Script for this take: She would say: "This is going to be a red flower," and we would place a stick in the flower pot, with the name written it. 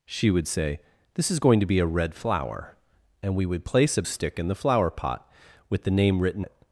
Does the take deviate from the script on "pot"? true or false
false